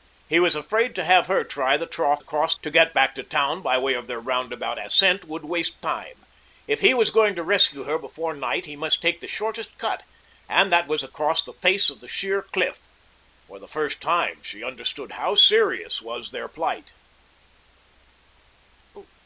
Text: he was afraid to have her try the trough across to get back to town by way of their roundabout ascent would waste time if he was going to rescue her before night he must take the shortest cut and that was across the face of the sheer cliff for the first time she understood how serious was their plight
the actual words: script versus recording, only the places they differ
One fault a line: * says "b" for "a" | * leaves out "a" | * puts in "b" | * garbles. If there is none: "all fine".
all fine